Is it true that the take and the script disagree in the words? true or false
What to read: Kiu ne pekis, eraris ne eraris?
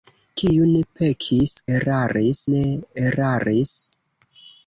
false